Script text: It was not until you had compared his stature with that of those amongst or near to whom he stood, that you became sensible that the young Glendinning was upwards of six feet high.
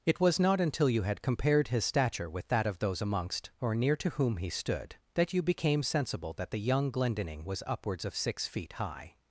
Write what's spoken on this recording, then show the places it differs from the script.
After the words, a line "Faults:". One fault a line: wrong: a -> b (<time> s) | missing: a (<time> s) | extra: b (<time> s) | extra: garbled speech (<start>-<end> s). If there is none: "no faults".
It was not until you had compared his stature with that of those amongst or near to whom he stood, that you became sensible that the young Glendinning was upwards of six feet high.
Faults:
no faults